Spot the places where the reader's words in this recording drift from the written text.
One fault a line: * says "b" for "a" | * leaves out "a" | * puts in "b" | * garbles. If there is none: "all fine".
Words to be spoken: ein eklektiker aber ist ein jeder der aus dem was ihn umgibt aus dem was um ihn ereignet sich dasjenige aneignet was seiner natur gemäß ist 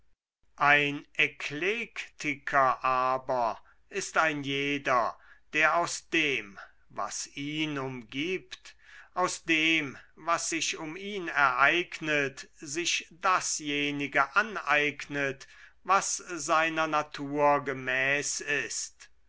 * puts in "sich"